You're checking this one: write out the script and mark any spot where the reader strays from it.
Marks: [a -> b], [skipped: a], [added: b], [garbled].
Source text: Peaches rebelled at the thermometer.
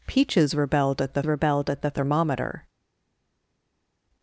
Peaches rebelled at the [added: rebelled at the] thermometer.